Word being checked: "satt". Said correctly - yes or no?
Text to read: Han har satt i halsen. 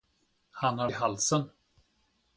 no